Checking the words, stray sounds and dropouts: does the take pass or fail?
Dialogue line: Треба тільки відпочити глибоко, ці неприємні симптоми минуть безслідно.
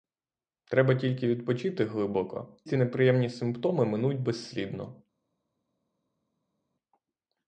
pass